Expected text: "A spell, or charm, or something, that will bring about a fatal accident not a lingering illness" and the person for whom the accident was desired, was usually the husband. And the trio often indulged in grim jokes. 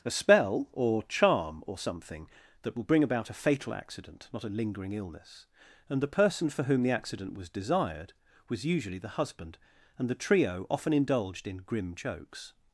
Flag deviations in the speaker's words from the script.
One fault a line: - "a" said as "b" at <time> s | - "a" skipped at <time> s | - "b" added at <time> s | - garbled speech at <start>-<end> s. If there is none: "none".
none